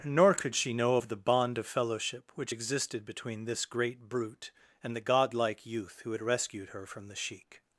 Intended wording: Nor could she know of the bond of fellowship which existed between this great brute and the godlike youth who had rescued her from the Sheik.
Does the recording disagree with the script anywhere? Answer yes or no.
no